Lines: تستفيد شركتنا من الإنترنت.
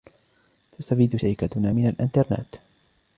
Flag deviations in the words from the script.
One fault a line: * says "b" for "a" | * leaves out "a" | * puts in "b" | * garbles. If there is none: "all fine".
all fine